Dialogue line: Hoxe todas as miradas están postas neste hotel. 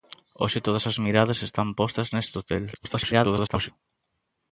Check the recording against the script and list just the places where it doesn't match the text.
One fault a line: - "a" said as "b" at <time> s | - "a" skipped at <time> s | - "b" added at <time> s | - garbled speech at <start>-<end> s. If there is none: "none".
- garbled speech at 2.7-3.7 s